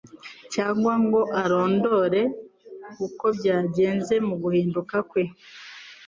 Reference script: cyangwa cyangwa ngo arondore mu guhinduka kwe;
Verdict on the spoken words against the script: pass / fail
fail